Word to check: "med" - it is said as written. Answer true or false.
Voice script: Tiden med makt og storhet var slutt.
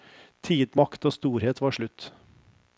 false